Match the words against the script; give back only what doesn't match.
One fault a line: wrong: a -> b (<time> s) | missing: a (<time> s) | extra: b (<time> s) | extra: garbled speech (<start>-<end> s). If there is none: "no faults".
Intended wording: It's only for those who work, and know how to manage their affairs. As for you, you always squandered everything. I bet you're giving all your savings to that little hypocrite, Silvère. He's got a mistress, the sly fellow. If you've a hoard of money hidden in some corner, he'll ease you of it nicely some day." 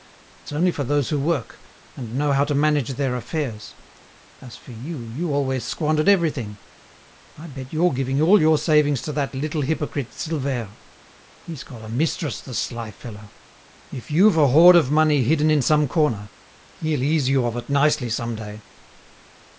no faults